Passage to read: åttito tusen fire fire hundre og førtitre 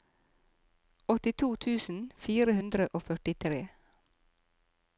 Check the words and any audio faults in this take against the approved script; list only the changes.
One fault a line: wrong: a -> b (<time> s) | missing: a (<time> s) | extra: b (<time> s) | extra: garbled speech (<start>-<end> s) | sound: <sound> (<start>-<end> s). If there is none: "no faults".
missing: fire (2.5 s)